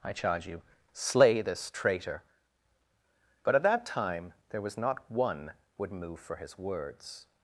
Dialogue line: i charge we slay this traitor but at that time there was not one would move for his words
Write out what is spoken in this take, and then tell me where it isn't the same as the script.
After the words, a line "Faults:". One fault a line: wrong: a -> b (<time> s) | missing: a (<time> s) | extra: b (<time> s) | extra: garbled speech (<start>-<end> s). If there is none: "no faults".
i charge you slay this traitor but at that time there was not one would move for his words
Faults:
wrong: we -> you (0.5 s)